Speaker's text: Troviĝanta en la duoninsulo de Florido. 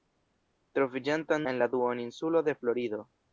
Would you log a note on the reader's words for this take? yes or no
no